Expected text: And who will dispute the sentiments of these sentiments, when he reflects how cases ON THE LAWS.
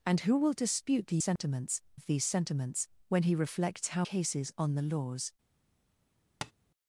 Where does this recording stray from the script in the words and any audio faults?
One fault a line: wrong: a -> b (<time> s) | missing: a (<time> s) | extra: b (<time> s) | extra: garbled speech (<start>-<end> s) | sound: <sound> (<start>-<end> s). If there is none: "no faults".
sound: dropout (1.4-1.4 s)
sound: tap (6.4-6.5 s)